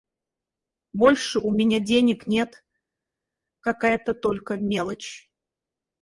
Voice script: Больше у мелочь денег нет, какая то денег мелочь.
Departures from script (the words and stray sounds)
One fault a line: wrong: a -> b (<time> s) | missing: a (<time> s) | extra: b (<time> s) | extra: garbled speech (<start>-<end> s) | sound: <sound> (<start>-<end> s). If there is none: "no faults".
wrong: мелочь -> меня (1.5 s)
wrong: денег -> только (4.1 s)